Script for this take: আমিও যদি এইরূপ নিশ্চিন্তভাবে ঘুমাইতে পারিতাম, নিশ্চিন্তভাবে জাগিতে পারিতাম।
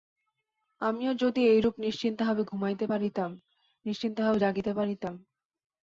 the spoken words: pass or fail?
pass